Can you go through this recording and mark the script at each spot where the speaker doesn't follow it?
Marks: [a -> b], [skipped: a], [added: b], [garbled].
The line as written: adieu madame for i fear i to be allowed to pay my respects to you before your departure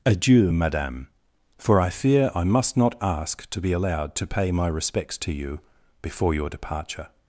adieu madame for i fear i [added: must not ask] to be allowed to pay my respects to you before your departure